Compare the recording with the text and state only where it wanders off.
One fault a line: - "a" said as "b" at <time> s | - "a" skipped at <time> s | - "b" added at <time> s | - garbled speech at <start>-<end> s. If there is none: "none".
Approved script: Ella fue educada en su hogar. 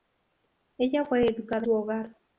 - "en" skipped at 1.6 s